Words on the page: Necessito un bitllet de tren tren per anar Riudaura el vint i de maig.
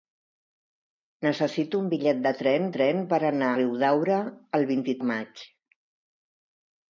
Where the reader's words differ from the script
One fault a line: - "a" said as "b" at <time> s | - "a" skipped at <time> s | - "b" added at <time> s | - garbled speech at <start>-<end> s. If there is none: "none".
none